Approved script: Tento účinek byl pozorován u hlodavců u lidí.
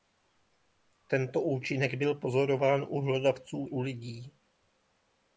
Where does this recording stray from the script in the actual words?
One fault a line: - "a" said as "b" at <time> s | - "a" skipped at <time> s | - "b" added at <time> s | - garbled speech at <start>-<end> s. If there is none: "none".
none